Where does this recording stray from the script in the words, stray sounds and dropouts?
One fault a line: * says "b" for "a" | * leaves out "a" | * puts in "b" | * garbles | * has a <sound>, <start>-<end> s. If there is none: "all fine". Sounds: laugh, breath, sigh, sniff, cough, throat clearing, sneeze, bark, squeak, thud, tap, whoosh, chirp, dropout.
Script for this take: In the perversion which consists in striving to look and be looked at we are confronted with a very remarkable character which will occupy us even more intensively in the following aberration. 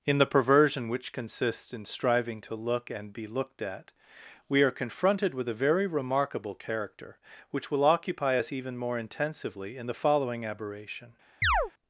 * has a chirp, 11.4-11.7 s